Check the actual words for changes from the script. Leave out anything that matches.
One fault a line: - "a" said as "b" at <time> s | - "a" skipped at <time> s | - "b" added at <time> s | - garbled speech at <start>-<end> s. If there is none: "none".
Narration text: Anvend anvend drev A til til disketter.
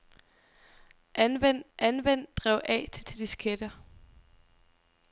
none